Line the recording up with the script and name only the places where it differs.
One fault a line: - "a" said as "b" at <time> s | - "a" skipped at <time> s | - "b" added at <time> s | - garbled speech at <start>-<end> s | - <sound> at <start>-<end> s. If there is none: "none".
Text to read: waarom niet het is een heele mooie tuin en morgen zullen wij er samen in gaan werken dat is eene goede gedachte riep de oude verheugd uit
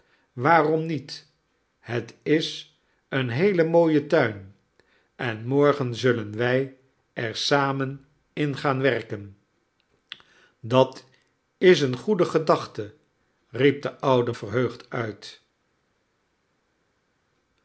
none